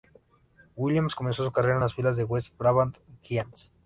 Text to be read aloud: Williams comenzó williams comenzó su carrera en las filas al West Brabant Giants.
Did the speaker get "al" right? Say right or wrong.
wrong